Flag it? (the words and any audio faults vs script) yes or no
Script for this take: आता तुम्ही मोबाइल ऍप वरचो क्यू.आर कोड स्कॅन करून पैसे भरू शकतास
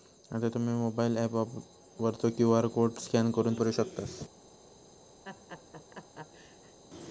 yes